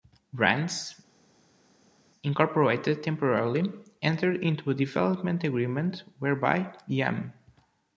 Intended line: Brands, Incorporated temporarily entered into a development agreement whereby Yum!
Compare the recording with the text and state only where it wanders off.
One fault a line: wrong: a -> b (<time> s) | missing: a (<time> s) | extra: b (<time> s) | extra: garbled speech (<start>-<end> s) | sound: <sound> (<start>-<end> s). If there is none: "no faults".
no faults